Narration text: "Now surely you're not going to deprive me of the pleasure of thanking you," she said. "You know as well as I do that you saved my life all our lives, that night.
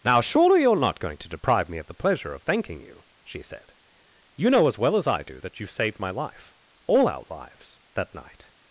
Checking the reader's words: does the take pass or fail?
pass